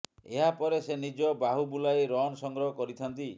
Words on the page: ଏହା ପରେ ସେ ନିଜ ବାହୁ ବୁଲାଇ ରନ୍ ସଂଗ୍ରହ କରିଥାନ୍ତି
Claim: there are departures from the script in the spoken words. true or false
false